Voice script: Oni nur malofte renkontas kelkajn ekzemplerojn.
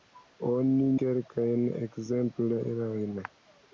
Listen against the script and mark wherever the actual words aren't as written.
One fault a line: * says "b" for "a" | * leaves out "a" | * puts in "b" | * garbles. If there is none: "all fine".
* leaves out "nur malofte renkontas"